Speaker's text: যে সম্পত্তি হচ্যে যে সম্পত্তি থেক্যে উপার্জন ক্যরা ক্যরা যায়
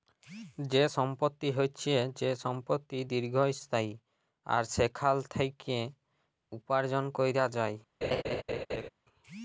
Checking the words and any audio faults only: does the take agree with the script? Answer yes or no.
no